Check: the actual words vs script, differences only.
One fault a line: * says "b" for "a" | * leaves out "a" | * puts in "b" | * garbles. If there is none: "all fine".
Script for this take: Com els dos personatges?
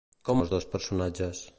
all fine